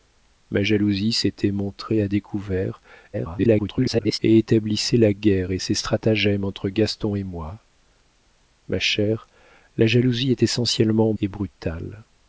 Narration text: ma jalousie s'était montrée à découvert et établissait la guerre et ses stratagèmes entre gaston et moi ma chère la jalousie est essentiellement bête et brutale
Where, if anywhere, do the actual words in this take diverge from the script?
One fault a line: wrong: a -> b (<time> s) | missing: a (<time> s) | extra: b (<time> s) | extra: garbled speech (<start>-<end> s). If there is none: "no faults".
extra: garbled speech (3.1-4.2 s)
missing: bête (11.1 s)